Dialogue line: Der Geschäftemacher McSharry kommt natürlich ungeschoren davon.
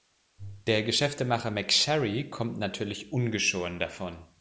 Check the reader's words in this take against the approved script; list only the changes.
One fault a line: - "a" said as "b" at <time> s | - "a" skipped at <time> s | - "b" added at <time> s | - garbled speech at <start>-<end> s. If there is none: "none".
none